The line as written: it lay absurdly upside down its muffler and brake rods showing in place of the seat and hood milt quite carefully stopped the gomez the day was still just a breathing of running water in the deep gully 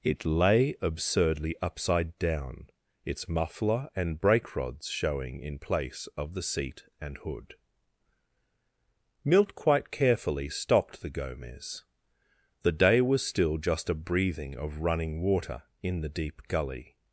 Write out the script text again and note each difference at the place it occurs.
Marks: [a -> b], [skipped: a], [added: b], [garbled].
it lay absurdly upside down its muffler and brake rods showing in place of the seat and hood milt quite carefully stopped the gomez the day was still just a breathing of running water in the deep gully